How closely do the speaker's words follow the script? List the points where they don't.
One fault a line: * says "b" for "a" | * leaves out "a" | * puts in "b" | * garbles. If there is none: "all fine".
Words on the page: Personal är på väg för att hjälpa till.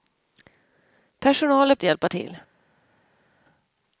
* leaves out "på väg för"